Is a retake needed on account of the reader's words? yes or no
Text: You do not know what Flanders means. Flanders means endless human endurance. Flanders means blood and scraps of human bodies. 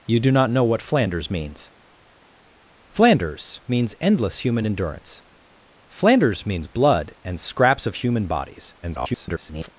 yes